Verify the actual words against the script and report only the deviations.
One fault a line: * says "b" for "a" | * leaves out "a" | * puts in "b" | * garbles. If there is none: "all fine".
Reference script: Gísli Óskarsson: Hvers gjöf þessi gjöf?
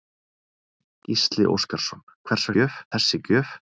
all fine